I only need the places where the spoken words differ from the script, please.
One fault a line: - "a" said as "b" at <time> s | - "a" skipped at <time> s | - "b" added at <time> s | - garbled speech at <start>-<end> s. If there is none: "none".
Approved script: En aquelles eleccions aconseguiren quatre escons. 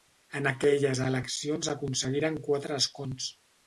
none